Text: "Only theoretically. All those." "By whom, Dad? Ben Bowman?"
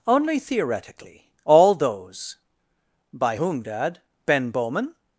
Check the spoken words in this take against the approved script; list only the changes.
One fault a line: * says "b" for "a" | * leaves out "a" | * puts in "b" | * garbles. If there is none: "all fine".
all fine